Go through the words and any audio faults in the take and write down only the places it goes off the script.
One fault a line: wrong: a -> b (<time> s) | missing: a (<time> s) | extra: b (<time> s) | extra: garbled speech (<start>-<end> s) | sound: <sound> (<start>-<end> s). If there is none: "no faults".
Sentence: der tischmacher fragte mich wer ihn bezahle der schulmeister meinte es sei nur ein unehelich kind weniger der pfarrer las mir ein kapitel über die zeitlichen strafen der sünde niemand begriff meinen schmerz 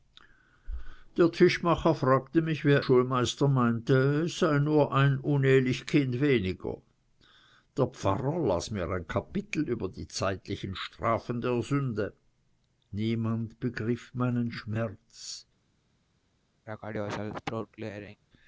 missing: ihn bezahle der (2.9 s)
sound: throat clearing (16.7-18.2 s)